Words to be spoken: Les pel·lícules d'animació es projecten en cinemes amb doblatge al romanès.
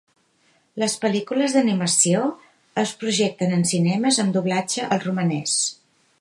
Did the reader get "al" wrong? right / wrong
right